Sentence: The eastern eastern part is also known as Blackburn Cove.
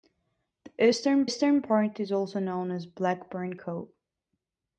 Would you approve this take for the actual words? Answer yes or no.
yes